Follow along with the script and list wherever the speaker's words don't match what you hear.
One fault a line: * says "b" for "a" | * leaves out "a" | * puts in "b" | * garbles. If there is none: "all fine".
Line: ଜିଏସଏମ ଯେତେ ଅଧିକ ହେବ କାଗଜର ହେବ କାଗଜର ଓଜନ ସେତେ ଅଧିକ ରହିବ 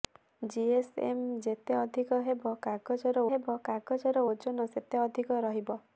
all fine